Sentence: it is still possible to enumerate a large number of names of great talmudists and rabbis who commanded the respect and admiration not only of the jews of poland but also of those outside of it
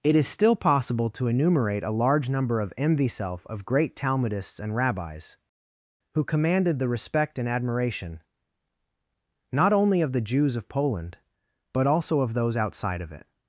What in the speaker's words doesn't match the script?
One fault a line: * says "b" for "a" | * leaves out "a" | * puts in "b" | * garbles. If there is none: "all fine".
* says "mvself" for "names"